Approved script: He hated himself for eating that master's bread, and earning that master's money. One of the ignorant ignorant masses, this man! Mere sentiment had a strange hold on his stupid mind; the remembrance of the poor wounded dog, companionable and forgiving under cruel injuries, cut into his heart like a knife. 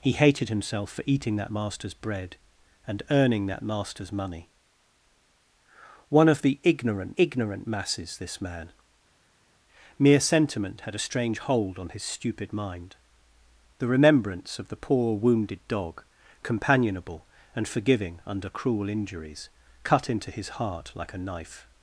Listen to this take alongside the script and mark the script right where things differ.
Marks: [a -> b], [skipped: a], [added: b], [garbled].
He hated himself for eating that master's bread, and earning that master's money. One of the ignorant ignorant masses, this man! Mere sentiment had a strange hold on his stupid mind; the remembrance of the poor wounded dog, companionable and forgiving under cruel injuries, cut into his heart like a knife.